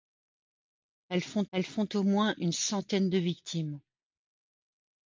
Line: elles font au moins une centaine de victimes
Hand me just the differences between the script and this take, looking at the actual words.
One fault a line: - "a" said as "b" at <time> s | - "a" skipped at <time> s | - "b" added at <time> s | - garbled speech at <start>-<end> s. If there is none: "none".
- "elles font" added at 1.5 s